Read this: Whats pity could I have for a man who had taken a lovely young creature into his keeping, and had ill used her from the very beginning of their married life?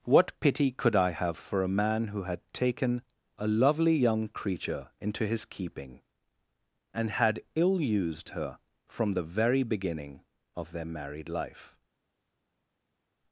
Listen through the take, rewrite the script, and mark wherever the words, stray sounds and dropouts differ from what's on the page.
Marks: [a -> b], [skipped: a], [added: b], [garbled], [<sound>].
[Whats -> What] pity could I have for a man who had taken a lovely young creature into his keeping, and had ill used her from the very beginning of their married life?